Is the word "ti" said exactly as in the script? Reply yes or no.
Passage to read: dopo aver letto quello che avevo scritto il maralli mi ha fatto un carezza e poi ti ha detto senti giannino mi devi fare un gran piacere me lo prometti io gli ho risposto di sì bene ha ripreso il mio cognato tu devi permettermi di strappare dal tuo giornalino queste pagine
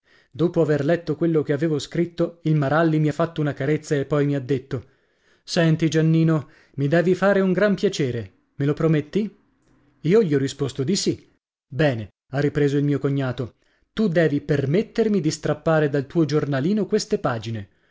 no